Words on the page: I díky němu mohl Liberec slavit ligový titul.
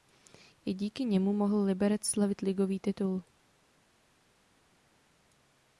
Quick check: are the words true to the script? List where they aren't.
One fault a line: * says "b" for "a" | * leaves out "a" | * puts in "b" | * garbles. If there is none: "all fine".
all fine